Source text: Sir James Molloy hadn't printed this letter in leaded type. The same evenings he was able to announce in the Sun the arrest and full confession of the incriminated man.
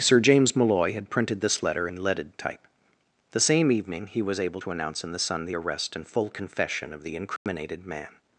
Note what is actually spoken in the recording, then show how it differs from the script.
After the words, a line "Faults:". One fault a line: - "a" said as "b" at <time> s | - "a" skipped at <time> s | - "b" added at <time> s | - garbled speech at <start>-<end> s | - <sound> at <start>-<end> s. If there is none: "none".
Sir James Molloy had printed this letter in leaded type. The same evening he was able to announce in the Sun the arrest and full confession of the incriminated man.
Faults:
- "hadn't" said as "had" at 0.9 s
- "evenings" said as "evening" at 3.7 s
- dropout at 7.4-7.5 s